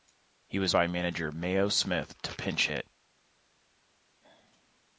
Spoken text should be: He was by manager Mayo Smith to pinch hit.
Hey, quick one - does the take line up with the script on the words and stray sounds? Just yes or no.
yes